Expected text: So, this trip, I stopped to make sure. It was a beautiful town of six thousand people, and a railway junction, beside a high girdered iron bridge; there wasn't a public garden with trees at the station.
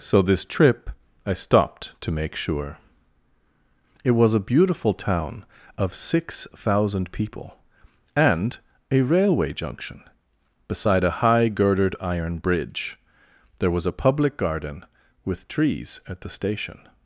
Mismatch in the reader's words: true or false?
true